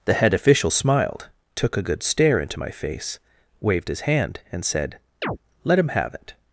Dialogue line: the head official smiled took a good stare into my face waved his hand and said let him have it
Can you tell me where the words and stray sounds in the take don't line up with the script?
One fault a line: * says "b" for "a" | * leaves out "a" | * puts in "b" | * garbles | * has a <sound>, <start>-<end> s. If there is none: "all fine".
* has a chirp, 5.2-5.4 s